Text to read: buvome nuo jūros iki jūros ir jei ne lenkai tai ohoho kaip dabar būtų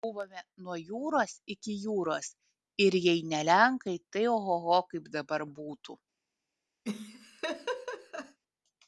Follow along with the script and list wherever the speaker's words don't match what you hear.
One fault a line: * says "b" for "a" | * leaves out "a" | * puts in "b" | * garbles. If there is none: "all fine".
all fine